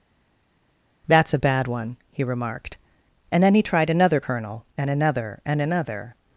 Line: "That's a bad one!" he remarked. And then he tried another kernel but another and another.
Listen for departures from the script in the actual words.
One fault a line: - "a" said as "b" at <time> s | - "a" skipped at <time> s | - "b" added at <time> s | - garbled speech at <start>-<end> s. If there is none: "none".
- "but" said as "and" at 4.8 s